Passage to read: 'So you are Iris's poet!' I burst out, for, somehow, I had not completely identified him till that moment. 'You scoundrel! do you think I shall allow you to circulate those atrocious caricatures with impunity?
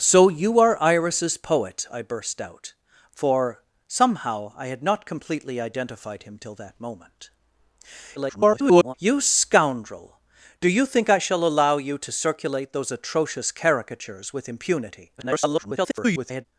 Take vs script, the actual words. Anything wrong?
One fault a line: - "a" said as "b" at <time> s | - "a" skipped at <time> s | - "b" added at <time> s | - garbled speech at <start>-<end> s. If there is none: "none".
- garbled speech at 8.2-8.9 s
- garbled speech at 15.2-16.5 s